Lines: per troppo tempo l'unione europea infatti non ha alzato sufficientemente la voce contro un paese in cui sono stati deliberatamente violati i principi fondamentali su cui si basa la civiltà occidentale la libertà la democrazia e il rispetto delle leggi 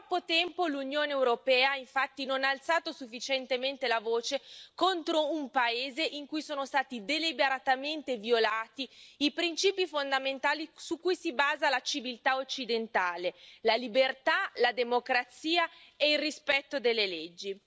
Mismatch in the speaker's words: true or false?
false